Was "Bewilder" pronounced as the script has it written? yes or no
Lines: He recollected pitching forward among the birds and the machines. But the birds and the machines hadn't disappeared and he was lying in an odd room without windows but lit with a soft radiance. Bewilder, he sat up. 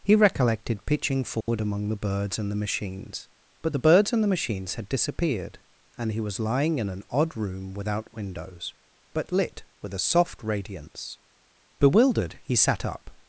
no